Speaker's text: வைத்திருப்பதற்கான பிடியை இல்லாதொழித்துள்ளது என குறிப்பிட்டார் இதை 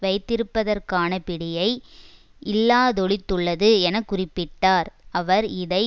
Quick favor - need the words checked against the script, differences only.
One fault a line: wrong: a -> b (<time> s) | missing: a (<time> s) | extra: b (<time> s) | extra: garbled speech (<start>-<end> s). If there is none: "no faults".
extra: அவர் (5.1 s)